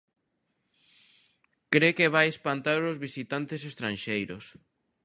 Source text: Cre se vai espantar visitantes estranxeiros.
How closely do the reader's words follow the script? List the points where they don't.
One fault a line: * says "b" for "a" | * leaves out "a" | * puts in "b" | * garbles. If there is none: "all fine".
* says "que" for "se"
* puts in "os"